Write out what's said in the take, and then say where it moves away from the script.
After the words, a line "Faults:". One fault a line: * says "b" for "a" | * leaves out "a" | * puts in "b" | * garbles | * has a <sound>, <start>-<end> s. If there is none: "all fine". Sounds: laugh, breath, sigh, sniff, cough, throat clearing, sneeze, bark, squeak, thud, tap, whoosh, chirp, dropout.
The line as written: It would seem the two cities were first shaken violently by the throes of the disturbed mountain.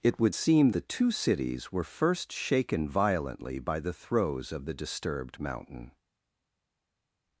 It would seem the two cities were first shaken violently by the throes of the disturbed mountain.
Faults:
all fine